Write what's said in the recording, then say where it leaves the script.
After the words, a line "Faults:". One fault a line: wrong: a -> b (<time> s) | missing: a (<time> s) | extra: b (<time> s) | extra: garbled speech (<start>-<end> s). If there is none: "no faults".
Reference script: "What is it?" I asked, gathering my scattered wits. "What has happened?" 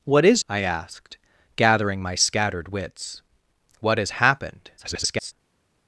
"What is?" I asked, gathering my scattered wits. "What has happened?" [garbled]
Faults:
missing: it (0.4 s)
extra: garbled speech (4.8-5.3 s)